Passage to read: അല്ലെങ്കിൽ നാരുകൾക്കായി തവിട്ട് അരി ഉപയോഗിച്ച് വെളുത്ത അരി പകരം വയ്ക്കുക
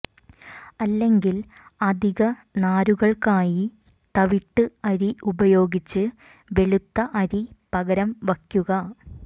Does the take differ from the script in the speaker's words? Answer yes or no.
yes